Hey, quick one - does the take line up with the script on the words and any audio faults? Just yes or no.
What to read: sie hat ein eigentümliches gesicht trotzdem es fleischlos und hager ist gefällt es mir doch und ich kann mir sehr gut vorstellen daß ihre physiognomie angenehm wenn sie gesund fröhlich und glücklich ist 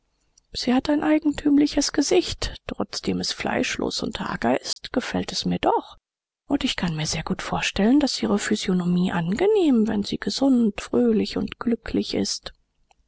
no